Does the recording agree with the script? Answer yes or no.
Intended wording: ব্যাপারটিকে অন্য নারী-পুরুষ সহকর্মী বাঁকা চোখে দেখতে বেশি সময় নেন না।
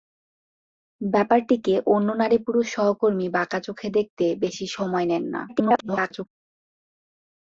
no